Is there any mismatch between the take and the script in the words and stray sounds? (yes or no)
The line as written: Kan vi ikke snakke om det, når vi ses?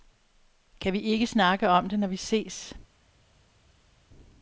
no